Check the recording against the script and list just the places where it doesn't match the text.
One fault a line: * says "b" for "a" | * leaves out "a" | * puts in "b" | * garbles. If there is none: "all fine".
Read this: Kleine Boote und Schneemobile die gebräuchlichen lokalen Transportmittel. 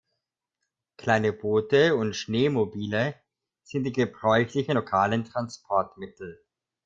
* puts in "sind"